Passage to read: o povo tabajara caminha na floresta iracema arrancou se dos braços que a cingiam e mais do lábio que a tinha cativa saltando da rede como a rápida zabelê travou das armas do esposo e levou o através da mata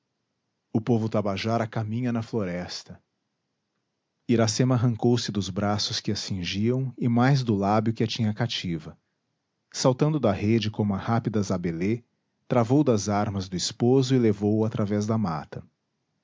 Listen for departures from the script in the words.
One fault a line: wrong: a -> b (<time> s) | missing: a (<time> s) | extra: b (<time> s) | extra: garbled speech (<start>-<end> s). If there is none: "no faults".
no faults